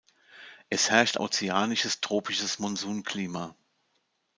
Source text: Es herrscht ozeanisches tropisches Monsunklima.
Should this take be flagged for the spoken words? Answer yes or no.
no